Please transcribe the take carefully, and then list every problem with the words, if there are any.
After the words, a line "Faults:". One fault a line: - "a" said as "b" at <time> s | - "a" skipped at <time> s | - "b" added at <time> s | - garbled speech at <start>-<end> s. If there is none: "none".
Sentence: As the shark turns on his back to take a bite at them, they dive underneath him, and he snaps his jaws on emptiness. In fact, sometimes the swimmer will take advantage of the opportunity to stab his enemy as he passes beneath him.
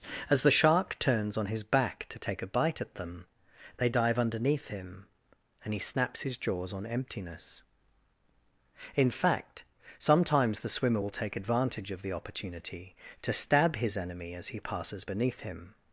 As the shark turns on his back to take a bite at them, they dive underneath him, and he snaps his jaws on emptiness. In fact, sometimes the swimmer will take advantage of the opportunity to stab his enemy as he passes beneath him.
Faults:
none